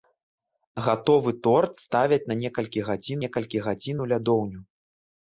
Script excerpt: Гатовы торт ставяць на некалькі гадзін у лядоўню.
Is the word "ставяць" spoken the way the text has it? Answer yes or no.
yes